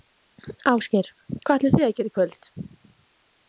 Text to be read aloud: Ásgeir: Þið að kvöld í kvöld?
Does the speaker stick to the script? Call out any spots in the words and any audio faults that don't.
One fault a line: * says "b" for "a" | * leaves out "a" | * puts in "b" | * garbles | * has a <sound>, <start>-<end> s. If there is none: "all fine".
* puts in "Hvað ætlið"
* says "gera" for "kvöld"